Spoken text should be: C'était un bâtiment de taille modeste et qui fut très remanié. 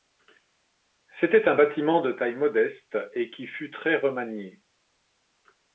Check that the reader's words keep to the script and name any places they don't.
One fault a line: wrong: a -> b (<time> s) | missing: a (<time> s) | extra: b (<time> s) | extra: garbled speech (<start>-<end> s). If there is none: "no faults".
no faults